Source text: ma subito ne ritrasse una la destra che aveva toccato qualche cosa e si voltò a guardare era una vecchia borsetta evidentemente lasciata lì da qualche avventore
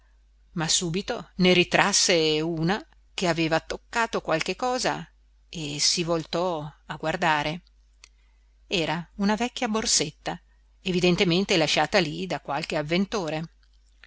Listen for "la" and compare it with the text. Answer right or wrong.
wrong